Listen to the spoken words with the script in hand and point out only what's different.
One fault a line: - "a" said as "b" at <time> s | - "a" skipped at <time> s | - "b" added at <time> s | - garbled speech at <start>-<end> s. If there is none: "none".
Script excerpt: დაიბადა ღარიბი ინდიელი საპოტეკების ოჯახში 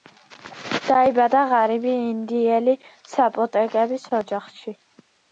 none